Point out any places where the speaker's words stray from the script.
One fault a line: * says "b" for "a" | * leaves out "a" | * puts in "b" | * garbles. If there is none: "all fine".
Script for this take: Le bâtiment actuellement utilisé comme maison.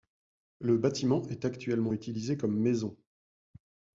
* puts in "est"